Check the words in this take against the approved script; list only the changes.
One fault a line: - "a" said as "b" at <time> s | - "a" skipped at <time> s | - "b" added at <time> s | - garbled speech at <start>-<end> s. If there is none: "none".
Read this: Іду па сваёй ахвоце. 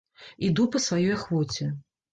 none